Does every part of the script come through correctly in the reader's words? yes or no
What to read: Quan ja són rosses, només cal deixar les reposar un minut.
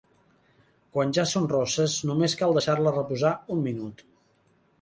yes